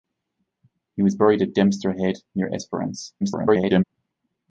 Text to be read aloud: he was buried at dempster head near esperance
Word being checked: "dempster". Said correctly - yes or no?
yes